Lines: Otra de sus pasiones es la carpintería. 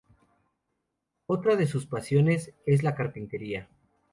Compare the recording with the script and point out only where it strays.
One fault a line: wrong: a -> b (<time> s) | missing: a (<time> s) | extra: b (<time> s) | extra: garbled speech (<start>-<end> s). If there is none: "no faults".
no faults